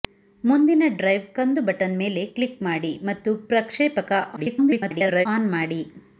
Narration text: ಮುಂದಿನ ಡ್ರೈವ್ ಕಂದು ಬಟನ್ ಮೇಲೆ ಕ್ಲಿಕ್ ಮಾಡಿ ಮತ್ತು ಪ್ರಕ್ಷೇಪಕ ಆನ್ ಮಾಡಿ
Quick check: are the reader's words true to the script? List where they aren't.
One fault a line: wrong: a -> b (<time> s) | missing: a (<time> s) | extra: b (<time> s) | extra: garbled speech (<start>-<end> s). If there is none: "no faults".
extra: garbled speech (4.4-5.3 s)